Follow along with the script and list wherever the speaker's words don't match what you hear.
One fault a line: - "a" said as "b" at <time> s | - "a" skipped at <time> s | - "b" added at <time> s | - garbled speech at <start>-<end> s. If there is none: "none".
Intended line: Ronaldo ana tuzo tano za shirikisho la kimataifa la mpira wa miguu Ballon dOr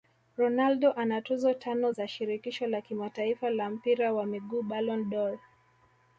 none